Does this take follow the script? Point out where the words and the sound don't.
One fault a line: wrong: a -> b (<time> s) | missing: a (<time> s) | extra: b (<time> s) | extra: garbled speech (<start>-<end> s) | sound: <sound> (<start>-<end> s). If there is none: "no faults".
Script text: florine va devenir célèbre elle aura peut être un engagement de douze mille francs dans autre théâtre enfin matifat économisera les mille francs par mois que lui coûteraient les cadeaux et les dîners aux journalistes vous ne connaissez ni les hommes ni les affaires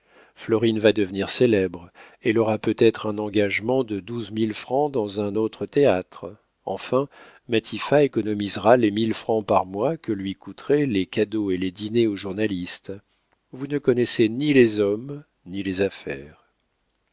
extra: un (5.2 s)